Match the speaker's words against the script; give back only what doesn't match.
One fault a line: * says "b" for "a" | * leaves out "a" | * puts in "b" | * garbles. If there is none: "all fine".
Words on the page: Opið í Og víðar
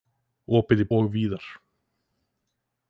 all fine